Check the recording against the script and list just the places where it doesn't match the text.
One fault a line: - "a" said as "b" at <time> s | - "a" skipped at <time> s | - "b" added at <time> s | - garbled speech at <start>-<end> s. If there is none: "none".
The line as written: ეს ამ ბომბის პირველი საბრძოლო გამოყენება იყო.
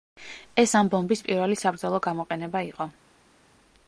none